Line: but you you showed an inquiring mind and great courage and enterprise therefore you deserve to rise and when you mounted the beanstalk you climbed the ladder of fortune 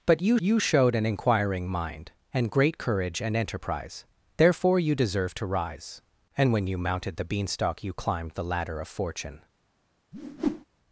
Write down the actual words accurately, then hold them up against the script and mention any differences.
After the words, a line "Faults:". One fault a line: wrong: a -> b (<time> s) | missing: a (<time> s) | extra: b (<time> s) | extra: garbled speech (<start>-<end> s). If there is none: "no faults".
but you you showed an inquiring mind and great courage and enterprise therefore you deserve to rise and when you mounted the beanstalk you climbed the ladder of fortune
Faults:
no faults